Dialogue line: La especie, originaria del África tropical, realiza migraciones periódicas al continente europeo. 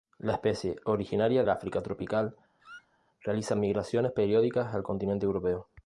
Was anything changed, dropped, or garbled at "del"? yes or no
yes